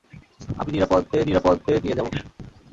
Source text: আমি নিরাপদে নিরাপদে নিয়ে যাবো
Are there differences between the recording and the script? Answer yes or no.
no